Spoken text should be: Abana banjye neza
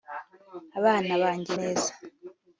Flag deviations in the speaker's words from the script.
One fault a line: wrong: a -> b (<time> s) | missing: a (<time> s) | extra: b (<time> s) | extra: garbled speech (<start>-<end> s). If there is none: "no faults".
no faults